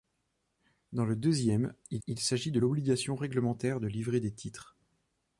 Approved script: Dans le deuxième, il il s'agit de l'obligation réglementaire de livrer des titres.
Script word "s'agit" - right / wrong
right